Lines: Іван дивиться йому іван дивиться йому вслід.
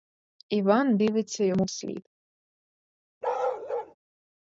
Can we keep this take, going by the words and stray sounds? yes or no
no